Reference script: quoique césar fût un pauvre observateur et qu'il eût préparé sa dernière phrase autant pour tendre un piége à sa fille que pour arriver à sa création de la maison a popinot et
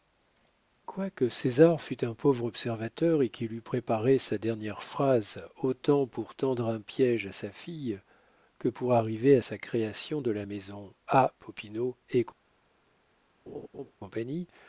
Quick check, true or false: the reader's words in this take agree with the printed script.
true